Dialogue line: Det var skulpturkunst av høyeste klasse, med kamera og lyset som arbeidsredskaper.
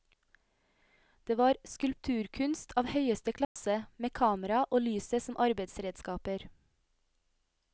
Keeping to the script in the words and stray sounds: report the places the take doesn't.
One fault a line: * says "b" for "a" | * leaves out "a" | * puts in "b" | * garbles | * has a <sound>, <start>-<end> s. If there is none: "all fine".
* has a dropout, 3.4-3.6 s